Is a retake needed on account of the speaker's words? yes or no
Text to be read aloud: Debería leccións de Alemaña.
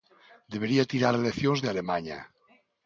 yes